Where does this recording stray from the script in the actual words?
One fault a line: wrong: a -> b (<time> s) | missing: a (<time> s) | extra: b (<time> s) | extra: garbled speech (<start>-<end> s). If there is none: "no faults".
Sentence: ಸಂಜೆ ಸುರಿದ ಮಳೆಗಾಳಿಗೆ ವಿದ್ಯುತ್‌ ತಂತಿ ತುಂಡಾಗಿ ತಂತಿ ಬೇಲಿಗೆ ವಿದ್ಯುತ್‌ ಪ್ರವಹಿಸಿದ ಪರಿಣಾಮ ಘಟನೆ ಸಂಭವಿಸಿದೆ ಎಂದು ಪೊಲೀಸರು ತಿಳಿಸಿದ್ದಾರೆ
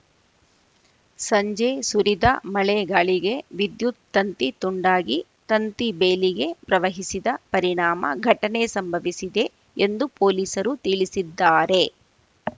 missing: ವಿದ್ಯುತ್ (6.5 s)